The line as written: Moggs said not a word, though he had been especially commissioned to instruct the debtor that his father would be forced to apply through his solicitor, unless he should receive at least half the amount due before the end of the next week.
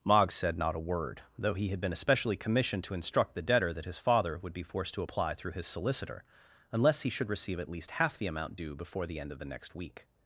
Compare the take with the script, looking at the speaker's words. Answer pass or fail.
pass